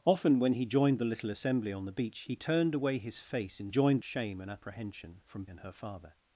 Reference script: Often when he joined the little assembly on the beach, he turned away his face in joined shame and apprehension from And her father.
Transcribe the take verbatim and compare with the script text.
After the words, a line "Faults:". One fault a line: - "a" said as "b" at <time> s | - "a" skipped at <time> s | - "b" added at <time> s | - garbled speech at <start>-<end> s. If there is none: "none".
Often when he joined the little assembly on the beach, he turned away his face in joined shame and apprehension from And her father.
Faults:
none